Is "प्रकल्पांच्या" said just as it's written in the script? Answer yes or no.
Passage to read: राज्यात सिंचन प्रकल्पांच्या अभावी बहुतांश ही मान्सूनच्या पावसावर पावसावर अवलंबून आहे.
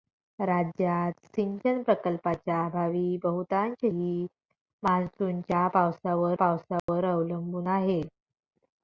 yes